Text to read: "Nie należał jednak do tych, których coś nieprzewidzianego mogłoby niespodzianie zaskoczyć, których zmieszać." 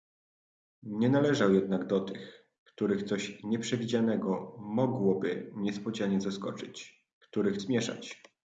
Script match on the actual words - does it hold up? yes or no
yes